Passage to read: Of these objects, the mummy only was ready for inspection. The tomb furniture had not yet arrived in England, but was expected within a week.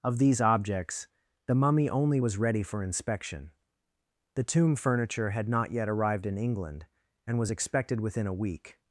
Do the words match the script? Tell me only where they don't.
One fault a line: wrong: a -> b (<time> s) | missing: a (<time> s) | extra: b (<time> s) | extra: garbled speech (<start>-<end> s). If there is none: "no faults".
wrong: but -> and (7.3 s)